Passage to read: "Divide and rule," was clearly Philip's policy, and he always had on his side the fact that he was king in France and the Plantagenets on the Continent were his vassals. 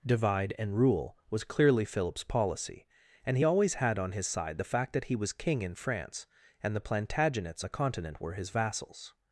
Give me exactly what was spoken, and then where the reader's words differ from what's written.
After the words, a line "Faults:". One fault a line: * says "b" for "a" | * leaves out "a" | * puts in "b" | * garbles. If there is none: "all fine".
"Divide and rule," was clearly Philip's policy, and he always had on his side the fact that he was king in France and the Plantagenets the Continent were his vassals.
Faults:
* leaves out "on"